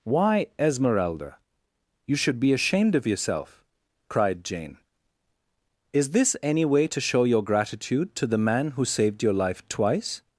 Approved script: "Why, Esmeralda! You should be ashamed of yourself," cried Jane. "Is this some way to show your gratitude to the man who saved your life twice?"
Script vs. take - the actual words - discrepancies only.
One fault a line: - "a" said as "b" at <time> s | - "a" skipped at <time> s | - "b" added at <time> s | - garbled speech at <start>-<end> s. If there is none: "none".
- "some" said as "any" at 6.4 s